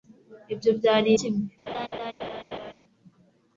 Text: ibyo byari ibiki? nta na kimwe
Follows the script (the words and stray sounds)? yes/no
no